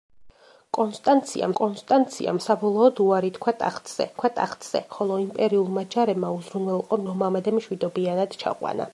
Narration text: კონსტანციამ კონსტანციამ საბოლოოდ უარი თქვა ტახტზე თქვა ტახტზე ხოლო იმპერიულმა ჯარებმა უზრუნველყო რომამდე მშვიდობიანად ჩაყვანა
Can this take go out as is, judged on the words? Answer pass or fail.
pass